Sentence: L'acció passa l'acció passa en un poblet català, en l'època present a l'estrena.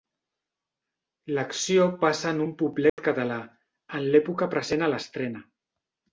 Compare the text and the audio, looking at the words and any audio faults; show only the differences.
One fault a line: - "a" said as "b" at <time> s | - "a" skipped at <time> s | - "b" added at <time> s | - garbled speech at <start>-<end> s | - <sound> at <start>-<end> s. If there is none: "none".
- "l'acció passa" skipped at 2.3 s
- dropout at 2.9-3.0 s